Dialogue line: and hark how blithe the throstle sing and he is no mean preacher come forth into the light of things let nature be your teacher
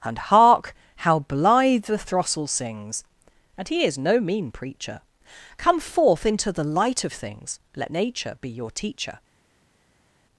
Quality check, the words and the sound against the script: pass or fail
fail